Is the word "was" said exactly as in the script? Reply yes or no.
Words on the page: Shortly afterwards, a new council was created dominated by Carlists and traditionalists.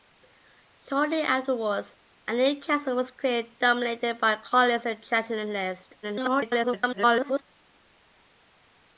yes